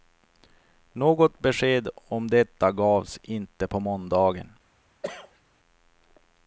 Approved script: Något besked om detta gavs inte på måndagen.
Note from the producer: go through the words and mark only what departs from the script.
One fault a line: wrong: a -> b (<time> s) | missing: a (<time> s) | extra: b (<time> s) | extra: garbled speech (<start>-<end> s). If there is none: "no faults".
no faults